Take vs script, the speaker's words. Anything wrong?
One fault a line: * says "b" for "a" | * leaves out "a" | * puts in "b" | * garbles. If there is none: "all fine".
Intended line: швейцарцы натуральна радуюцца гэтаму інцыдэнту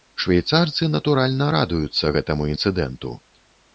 all fine